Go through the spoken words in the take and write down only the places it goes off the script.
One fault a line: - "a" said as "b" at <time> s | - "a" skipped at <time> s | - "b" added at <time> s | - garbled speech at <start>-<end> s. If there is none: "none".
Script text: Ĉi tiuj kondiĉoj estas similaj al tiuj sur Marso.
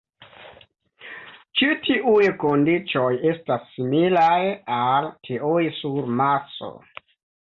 none